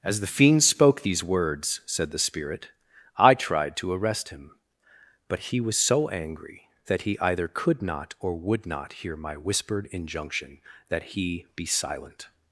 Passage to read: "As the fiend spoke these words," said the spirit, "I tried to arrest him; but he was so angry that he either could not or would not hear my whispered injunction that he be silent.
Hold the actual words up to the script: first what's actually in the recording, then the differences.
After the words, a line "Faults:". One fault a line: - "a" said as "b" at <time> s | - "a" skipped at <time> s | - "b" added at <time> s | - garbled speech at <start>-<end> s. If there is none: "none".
"As the fiend spoke these words," said the spirit, "I tried to arrest him; but he was so angry that he either could not or would not hear my whispered injunction that he be silent.
Faults:
none